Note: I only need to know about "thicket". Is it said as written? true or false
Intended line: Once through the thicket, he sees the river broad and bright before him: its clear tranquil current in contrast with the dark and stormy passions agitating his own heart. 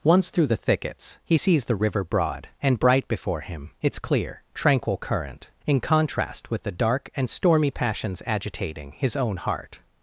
false